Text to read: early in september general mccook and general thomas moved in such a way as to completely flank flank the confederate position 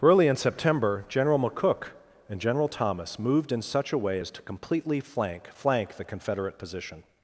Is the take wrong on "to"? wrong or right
right